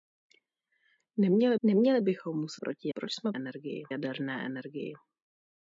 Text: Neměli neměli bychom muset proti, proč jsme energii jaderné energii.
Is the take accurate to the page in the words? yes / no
yes